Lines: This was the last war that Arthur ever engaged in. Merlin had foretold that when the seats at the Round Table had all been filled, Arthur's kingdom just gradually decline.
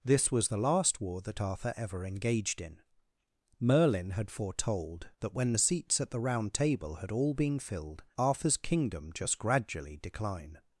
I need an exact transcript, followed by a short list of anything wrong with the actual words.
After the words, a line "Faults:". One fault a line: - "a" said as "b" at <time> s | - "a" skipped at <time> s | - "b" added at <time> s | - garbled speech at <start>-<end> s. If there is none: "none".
This was the last war that Arthur ever engaged in. Merlin had foretold that when the seats at the Round Table had all been filled, Arthur's kingdom just gradually decline.
Faults:
none